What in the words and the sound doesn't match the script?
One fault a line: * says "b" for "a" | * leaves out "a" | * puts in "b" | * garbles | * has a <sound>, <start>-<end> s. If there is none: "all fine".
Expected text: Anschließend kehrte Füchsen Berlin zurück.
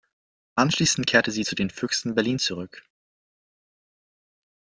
* puts in "sie zu den"